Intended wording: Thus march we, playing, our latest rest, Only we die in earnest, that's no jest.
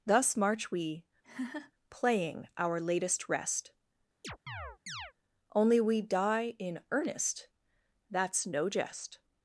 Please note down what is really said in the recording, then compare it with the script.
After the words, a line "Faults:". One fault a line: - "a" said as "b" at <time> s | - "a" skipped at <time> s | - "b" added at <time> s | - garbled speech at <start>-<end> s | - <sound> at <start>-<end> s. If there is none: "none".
Thus march we, playing, our latest rest, Only we die in earnest, that's no jest.
Faults:
- laugh at 1.2-1.7 s
- chirp at 4.2-5.1 s